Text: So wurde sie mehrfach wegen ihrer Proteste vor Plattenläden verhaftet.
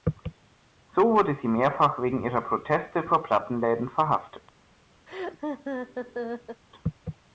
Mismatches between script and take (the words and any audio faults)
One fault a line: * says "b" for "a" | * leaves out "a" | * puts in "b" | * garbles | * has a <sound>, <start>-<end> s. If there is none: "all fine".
* has a laugh, 5.1-6.6 s